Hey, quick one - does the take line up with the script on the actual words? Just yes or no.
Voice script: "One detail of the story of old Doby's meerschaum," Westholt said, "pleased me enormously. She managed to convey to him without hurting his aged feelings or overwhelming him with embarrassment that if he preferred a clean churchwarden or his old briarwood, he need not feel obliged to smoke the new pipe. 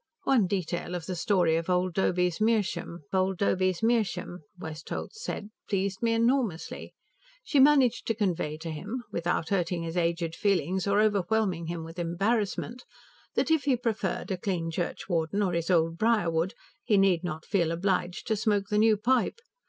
no